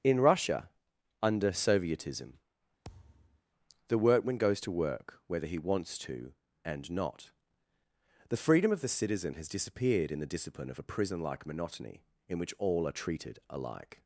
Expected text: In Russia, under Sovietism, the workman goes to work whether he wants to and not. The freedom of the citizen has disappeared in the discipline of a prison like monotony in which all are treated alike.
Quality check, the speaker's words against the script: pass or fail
pass